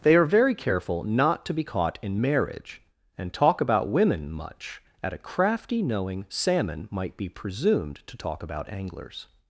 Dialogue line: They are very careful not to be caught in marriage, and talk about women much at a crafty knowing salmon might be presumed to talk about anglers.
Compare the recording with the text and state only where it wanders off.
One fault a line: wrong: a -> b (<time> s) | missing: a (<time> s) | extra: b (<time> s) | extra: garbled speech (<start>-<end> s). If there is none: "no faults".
no faults